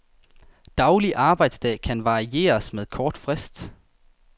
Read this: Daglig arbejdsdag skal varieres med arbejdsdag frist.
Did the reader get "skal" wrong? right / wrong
wrong